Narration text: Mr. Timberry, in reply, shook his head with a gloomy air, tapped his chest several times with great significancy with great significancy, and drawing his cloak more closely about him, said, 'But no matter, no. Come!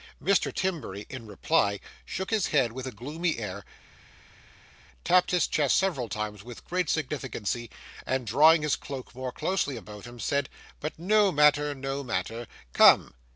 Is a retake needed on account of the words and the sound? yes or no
yes